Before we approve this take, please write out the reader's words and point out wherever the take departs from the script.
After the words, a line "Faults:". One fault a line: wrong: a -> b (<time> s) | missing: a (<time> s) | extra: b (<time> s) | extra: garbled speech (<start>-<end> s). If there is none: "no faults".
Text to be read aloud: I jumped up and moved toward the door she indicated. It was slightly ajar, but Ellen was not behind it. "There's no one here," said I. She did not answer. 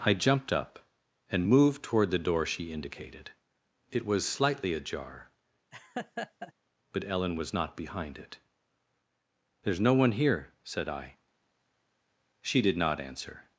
I jumped up and moved toward the door she indicated. It was slightly ajar, but Ellen was not behind it. "There's no one here," said I. She did not answer.
Faults:
no faults